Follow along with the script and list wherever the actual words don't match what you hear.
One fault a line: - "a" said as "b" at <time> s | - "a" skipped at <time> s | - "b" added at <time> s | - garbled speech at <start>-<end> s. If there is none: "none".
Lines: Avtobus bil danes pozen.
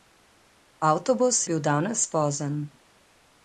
none